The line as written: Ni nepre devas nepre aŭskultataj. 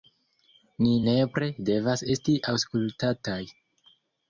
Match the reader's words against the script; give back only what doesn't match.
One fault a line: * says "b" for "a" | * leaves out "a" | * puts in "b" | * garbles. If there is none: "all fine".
* says "esti" for "nepre"